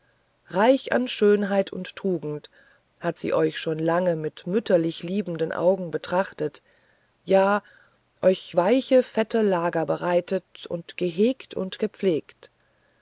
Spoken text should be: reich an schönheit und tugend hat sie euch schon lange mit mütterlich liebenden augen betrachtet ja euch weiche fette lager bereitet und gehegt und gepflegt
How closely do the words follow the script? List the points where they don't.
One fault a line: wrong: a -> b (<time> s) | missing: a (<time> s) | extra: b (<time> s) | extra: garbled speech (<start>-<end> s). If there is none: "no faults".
no faults